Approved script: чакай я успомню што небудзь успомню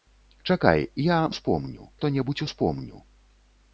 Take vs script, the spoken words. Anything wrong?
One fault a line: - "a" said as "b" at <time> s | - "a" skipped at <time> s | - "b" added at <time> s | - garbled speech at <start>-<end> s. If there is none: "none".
none